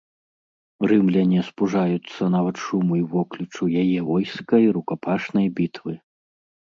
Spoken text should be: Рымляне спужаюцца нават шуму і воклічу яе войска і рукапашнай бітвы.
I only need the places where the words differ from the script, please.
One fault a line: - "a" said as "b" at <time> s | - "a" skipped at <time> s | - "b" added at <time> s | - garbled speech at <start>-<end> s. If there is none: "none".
none